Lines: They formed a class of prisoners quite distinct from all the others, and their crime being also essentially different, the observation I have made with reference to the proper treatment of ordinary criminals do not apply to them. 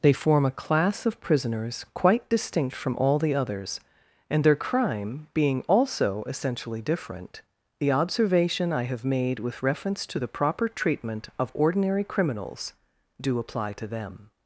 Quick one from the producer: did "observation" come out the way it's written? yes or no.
yes